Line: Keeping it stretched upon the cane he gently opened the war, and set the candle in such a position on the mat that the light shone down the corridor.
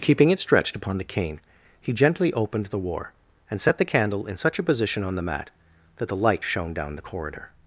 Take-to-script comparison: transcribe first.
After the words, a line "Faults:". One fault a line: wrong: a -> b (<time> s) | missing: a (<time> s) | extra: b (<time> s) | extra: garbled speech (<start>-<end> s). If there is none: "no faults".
Keeping it stretched upon the cane he gently opened the war, and set the candle in such a position on the mat that the light shone down the corridor.
Faults:
no faults